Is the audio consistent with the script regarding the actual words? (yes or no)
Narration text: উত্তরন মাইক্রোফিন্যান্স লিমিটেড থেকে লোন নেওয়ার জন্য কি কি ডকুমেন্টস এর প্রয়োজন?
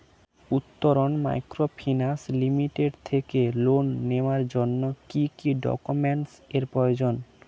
yes